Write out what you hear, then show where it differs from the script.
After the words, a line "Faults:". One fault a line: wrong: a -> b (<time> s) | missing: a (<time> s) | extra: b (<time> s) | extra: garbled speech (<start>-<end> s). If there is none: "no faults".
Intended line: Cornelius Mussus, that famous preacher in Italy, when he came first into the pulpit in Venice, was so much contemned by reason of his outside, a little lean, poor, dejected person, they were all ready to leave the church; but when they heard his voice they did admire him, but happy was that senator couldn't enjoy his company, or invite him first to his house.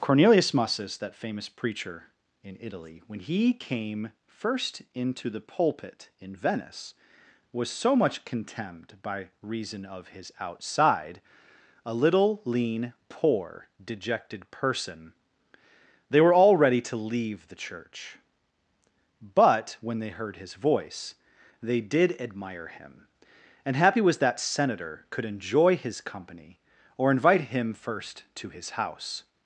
Cornelius Mussus, that famous preacher in Italy, when he came first into the pulpit in Venice, was so much contemned by reason of his outside, a little lean, poor, dejected person, they were all ready to leave the church; but when they heard his voice they did admire him, and happy was that senator could enjoy his company, or invite him first to his house.
Faults:
wrong: but -> and (23.6 s)
wrong: couldn't -> could (25.1 s)